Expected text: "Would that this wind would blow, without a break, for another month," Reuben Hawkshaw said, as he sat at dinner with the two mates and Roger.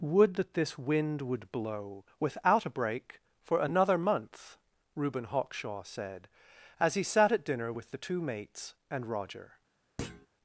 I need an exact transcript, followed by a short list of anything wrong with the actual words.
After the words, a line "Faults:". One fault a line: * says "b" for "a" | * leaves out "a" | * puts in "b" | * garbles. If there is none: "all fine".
"Would that this wind would blow, without a break, for another month," Reuben Hawkshaw said, as he sat at dinner with the two mates and Roger.
Faults:
all fine